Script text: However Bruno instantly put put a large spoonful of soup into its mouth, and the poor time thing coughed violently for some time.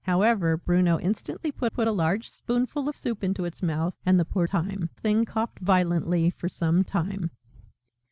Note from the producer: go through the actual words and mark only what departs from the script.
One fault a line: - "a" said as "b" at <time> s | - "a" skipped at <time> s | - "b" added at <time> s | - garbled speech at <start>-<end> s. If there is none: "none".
none